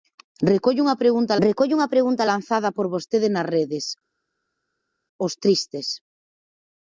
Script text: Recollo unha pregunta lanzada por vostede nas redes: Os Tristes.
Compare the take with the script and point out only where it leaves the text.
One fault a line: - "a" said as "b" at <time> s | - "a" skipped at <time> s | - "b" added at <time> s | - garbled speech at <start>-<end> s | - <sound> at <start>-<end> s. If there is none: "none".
- "recollo unha pregunta" added at 1.5 s